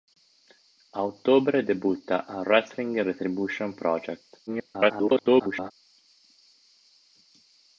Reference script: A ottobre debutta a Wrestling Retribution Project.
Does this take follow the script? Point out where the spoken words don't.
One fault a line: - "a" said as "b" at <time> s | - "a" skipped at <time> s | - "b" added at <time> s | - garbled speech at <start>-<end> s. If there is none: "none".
- garbled speech at 4.5-5.7 s